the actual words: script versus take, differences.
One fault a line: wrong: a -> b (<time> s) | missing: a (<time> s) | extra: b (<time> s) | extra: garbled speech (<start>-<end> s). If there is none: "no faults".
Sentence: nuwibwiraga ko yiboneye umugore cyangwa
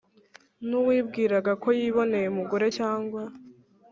no faults